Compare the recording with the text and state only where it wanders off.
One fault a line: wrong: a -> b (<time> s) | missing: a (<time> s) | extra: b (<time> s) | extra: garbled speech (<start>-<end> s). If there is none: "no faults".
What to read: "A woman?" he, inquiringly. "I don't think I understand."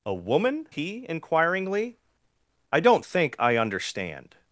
no faults